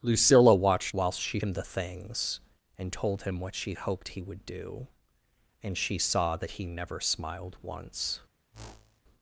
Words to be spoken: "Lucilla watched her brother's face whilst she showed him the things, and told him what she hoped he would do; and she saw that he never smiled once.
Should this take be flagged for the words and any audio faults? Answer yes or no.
yes